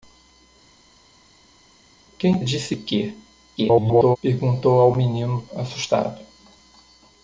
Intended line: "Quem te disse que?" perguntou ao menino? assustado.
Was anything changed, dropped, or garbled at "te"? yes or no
yes